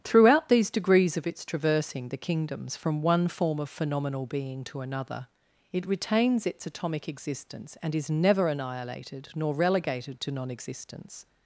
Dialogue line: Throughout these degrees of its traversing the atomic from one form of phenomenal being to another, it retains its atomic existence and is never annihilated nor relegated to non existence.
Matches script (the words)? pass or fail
fail